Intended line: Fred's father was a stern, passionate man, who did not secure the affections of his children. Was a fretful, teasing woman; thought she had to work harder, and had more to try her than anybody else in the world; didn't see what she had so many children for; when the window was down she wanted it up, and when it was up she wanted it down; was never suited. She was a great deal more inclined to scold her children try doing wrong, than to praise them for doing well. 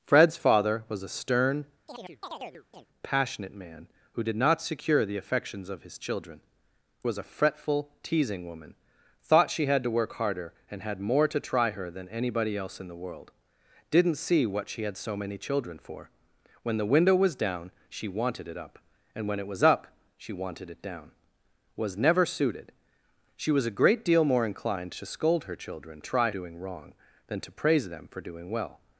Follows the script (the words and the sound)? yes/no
no